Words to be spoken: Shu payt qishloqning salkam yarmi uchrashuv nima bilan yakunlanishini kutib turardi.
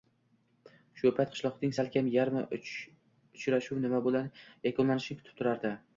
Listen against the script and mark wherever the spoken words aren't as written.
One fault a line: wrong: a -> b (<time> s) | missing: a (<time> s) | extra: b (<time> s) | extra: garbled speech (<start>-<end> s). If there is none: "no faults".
no faults